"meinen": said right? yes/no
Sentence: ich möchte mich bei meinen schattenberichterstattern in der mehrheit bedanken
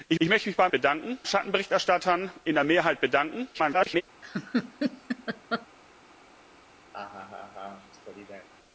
no